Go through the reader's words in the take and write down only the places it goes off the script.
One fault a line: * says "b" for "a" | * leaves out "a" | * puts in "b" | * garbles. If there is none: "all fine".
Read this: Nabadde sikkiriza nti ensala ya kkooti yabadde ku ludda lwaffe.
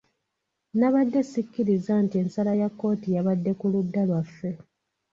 all fine